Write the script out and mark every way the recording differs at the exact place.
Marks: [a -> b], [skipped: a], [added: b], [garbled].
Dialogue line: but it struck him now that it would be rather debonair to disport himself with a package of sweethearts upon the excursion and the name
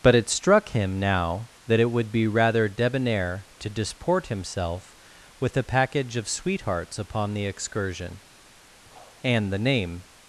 but it struck him now that it would be rather debonair to disport himself with a package of sweethearts upon the excursion and the name